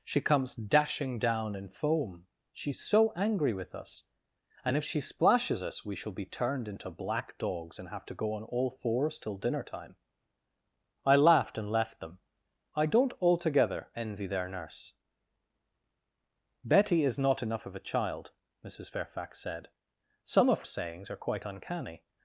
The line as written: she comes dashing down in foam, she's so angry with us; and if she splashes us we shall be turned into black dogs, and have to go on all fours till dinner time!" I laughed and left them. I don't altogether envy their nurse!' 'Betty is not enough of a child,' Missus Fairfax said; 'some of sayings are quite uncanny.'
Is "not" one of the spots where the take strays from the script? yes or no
no